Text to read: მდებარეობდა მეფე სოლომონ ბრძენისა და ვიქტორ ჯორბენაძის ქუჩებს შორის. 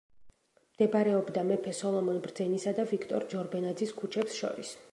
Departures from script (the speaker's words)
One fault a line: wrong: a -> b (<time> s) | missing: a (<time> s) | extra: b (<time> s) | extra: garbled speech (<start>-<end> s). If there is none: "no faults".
no faults